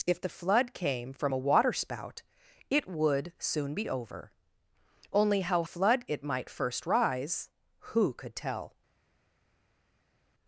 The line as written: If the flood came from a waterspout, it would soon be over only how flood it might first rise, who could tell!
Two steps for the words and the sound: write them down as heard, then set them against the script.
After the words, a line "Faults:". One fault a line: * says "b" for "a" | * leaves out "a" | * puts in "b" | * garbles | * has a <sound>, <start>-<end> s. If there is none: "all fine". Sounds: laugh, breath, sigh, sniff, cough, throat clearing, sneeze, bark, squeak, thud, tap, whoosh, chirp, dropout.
If the flood came from a waterspout, it would soon be over only how flood it might first rise, who could tell!
Faults:
all fine